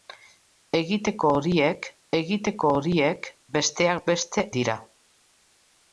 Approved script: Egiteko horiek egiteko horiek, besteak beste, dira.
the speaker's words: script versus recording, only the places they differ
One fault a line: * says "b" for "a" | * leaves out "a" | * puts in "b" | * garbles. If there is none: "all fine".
all fine